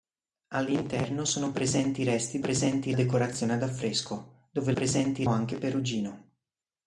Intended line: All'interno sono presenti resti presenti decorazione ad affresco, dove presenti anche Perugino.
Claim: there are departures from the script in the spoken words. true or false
false